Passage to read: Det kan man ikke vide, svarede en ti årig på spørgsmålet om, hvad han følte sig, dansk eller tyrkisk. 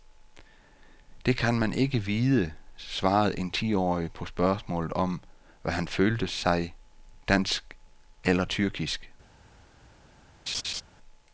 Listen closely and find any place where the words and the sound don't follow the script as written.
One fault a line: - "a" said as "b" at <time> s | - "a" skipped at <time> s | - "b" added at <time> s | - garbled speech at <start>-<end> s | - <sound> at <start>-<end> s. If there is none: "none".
- laugh at 10.5-10.8 s